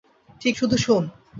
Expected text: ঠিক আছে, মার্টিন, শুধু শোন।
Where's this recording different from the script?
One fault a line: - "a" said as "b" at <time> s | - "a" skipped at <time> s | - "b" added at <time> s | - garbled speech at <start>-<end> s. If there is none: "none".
- "আছে মার্টিন" skipped at 0.6 s